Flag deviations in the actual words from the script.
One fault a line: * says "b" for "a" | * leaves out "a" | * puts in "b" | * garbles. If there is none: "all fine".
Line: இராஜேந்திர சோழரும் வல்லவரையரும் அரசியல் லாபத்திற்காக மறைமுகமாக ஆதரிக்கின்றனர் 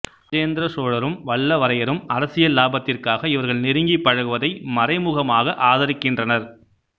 * puts in "இவர்கள் நெருங்கிப் பழகுவதை"